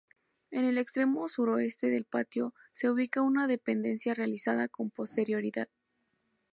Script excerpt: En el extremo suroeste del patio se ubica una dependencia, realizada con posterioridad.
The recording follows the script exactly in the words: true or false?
true